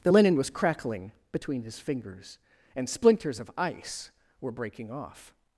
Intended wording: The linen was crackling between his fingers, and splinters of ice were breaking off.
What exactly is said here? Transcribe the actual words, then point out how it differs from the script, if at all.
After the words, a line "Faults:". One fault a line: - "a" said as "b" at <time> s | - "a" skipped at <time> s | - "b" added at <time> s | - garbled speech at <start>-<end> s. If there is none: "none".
The linen was crackling between his fingers, and splinters of ice were breaking off.
Faults:
none